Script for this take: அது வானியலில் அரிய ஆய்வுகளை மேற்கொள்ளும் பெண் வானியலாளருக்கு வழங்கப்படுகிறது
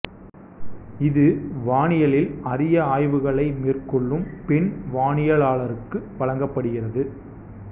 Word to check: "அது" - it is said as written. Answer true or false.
false